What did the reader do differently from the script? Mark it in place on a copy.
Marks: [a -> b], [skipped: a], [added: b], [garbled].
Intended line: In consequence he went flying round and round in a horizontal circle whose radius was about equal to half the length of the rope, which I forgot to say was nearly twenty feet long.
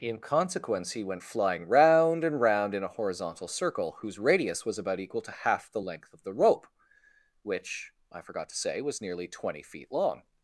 In consequence he went flying round and round in a horizontal circle whose radius was about equal to half the length of the rope, which I forgot to say was nearly twenty feet long.